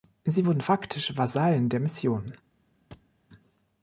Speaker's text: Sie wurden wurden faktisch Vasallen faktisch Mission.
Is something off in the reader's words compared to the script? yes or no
yes